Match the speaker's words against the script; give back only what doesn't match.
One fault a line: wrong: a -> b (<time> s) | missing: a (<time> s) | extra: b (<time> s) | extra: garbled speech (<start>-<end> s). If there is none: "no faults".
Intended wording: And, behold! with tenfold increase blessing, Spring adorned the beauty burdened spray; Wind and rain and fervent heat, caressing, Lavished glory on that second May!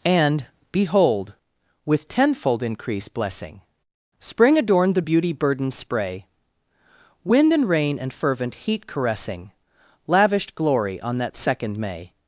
no faults